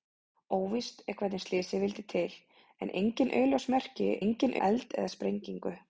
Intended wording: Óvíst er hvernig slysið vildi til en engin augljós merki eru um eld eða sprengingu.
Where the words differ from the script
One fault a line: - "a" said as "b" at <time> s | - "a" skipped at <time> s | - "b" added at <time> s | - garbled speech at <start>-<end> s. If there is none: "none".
- "eru" said as "engin" at 4.3 s